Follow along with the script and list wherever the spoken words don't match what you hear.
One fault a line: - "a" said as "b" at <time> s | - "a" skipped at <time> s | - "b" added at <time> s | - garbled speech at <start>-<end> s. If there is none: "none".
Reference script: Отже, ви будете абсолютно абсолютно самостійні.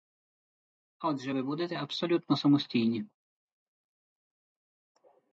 - "абсолютно" skipped at 2.4 s